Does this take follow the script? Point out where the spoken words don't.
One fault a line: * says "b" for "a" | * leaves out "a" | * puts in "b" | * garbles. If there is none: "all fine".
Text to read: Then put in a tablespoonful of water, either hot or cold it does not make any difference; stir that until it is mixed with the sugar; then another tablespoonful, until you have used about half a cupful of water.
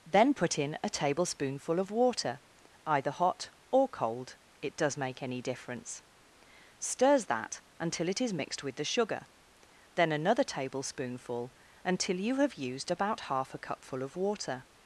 * leaves out "not"
* says "stirs" for "stir"